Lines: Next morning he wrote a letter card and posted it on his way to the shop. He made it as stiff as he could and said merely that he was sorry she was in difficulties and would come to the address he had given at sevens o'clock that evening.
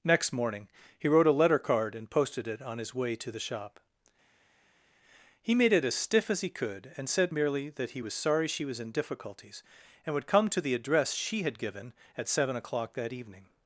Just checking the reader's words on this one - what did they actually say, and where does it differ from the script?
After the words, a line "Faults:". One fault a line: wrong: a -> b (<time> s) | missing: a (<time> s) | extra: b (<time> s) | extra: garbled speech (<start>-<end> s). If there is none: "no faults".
Next morning he wrote a letter card and posted it on his way to the shop. He made it as stiff as he could and said merely that he was sorry she was in difficulties and would come to the address she had given at seven o'clock that evening.
Faults:
wrong: he -> she (11.1 s)
wrong: sevens -> seven (12.3 s)